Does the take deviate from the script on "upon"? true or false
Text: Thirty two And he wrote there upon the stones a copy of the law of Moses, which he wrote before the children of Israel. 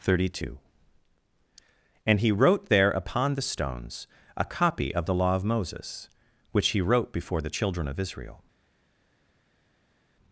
false